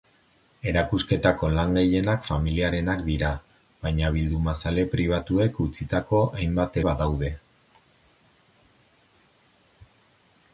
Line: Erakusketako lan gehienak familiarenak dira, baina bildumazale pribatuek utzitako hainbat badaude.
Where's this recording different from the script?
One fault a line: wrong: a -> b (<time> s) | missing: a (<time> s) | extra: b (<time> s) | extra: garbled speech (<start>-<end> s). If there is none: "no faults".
no faults